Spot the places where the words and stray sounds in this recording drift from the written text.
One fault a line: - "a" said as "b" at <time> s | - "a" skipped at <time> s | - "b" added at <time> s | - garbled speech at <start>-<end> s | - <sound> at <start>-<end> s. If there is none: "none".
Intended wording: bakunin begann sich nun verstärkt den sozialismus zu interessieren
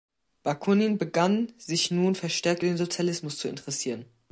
none